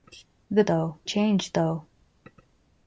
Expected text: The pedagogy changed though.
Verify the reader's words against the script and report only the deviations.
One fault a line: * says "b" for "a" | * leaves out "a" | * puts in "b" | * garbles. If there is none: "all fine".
* says "though" for "pedagogy"